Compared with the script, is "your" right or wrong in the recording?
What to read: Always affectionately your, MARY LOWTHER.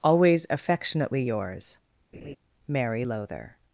wrong